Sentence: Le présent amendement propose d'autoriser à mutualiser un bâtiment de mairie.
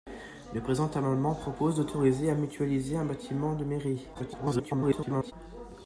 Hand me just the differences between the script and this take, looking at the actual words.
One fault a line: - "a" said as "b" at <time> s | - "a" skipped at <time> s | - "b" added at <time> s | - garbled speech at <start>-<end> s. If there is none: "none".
- garbled speech at 4.1-5.3 s